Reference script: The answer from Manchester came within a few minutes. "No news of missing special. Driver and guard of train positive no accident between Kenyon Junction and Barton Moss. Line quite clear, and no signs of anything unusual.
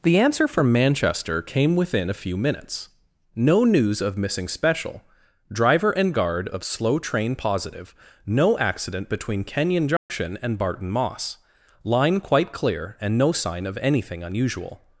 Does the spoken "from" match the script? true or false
true